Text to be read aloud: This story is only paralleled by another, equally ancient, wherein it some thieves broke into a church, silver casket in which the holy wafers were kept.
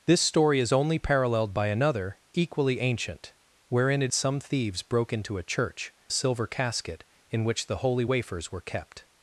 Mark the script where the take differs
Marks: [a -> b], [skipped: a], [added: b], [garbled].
This story is only paralleled by another, equally ancient, wherein it some thieves broke into a church, silver casket in which the holy wafers were kept.